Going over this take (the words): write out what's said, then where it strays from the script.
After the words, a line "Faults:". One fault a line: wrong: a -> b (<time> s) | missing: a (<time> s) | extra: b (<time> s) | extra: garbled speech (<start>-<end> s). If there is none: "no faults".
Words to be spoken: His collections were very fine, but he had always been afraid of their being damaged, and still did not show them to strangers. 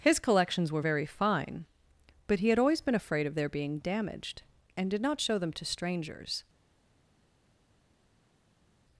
His collections were very fine, but he had always been afraid of their being damaged, and did not show them to strangers.
Faults:
missing: still (4.9 s)